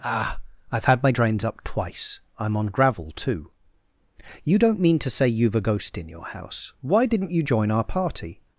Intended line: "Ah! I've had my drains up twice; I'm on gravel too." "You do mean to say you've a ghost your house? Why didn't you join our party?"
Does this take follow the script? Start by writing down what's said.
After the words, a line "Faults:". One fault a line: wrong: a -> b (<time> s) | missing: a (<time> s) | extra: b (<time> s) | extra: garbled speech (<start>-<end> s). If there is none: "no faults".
"Ah! I've had my drains up twice; I'm on gravel too." "You don't mean to say you've a ghost in your house? Why didn't you join our party?"
Faults:
wrong: do -> don't (4.6 s)
extra: in (6.0 s)